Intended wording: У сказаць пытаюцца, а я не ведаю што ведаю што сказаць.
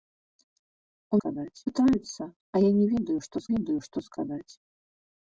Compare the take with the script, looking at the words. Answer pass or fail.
pass